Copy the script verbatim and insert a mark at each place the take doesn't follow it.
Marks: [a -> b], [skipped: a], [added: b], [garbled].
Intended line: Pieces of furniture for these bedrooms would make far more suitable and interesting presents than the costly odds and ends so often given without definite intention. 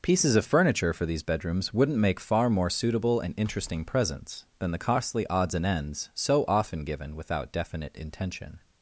Pieces of furniture for these bedrooms [would -> wouldn't] make far more suitable and interesting presents than the costly odds and ends so often given without definite intention.